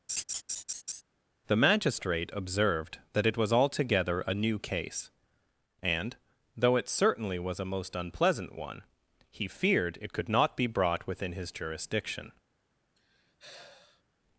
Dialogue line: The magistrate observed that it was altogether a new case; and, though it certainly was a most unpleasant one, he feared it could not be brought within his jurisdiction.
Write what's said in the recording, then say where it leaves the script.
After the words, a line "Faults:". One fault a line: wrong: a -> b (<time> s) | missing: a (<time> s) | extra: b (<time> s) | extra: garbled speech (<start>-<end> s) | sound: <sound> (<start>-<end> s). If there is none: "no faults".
The magistrate observed that it was altogether a new case; and, though it certainly was a most unpleasant one, he feared it could not be brought within his jurisdiction.
Faults:
sound: laugh (0.1-1.0 s)
sound: sigh (13.0-14.0 s)